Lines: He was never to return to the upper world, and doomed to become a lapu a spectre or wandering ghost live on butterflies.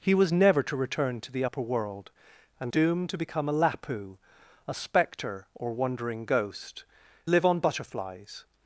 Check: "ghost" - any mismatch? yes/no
no